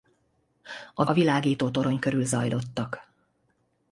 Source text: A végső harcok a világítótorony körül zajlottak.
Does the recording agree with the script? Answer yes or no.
no